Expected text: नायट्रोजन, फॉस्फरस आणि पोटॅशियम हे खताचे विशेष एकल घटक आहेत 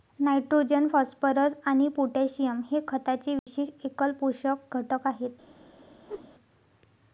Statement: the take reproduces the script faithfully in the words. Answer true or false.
false